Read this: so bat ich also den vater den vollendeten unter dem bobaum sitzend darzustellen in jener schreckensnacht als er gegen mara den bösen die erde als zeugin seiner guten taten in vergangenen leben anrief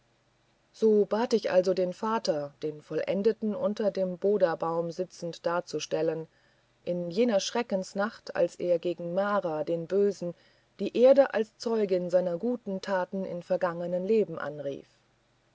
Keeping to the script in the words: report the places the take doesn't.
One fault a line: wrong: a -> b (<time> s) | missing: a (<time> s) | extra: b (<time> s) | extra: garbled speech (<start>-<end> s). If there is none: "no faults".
no faults